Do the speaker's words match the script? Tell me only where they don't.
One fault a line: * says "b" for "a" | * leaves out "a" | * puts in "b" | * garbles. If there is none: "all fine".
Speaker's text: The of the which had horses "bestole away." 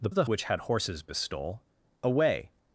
all fine